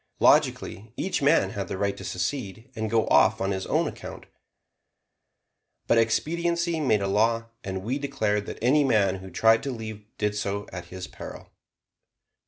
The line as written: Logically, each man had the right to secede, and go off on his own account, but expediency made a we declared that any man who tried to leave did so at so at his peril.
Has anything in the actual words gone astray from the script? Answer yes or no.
yes